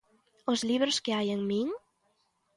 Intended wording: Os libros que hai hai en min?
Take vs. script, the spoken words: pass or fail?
fail